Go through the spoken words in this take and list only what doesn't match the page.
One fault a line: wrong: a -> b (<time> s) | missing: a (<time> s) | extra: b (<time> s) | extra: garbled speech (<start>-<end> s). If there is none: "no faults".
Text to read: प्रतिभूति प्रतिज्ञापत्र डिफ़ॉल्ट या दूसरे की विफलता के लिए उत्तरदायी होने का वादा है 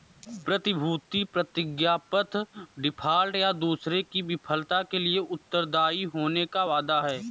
no faults